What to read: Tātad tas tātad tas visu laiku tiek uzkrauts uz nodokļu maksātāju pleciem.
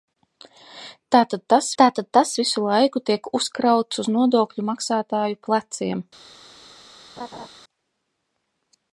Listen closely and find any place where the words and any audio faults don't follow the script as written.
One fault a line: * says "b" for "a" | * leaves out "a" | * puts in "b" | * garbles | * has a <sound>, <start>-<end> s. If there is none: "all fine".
* has a laugh, 7.2-7.5 s